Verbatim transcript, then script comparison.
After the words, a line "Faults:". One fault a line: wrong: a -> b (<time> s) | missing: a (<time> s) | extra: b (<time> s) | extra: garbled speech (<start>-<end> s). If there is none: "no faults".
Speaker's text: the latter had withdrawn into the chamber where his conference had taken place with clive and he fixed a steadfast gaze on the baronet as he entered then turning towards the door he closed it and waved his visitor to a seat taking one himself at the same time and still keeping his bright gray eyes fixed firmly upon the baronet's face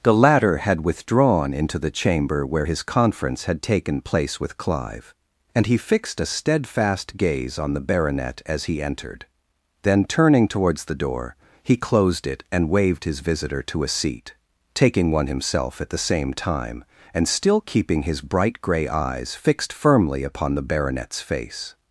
the latter had withdrawn into the chamber where his conference had taken place with clive and he fixed a steadfast gaze on the baronet as he entered then turning towards the door he closed it and waved his visitor to a seat taking one himself at the same time and still keeping his bright gray eyes fixed firmly upon the baronet's face
Faults:
no faults